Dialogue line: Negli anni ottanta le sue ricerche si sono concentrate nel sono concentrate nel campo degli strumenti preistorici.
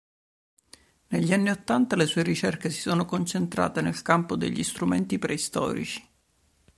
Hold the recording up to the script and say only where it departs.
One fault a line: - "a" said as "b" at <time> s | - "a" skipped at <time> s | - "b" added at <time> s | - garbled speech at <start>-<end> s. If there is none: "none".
- "sono concentrate nel" skipped at 4.0 s